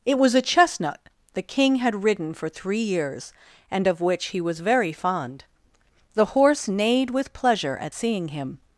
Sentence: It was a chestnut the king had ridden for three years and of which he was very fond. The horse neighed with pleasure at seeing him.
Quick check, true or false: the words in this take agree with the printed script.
true